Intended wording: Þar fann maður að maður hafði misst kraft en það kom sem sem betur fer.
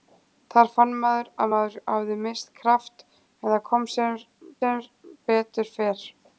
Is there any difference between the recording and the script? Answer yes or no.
no